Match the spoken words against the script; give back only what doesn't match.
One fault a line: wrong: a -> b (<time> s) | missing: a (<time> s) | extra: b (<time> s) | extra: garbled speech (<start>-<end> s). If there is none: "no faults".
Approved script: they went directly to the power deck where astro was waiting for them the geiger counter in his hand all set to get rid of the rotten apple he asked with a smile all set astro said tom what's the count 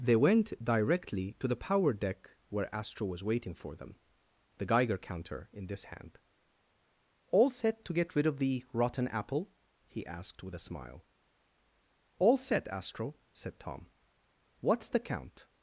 wrong: his -> this (5.7 s)